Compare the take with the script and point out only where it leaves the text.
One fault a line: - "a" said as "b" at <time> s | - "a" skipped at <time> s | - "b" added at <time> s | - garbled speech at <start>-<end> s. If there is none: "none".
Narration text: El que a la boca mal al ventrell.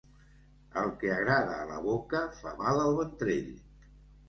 - "agrada" added at 1.2 s
- "fa" added at 2.4 s